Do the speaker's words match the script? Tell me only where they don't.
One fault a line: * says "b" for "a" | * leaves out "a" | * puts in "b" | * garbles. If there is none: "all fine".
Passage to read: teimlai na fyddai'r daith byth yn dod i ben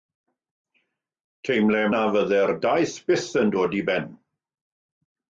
all fine